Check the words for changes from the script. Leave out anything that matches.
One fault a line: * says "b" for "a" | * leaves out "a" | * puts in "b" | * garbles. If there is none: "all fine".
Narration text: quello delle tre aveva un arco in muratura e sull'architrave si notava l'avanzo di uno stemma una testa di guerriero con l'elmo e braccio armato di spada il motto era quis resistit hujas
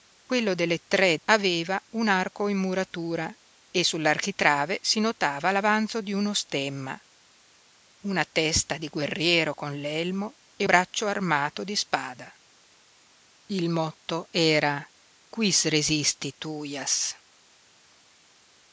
all fine